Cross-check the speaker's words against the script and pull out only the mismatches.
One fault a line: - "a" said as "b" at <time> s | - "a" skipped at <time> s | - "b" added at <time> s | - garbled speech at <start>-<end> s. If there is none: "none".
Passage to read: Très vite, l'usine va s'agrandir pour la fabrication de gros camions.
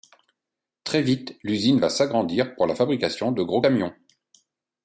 none